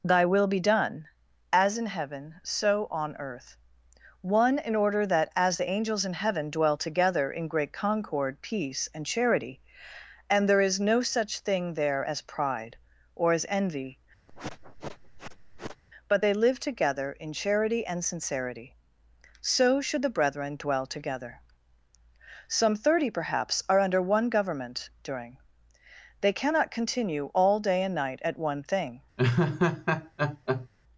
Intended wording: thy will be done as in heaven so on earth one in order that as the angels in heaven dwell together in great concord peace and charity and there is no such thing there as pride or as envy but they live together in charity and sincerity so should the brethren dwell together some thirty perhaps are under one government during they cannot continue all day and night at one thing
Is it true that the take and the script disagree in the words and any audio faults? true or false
true